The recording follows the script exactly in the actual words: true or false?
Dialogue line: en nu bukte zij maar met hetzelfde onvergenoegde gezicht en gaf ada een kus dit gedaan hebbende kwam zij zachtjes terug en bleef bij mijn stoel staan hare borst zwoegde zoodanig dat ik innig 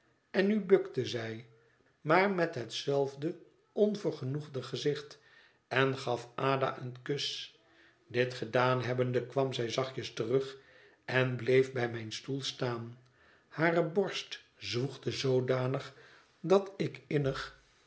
true